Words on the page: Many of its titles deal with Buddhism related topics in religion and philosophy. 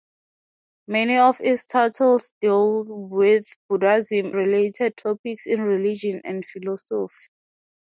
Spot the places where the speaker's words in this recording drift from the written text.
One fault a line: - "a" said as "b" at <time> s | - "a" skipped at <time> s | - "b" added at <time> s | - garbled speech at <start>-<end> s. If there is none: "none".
none